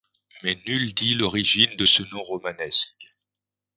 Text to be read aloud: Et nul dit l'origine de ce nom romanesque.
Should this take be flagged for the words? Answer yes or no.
yes